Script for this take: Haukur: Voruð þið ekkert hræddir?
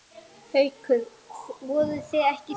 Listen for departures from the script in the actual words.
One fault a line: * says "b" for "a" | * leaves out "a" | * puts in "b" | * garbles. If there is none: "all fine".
all fine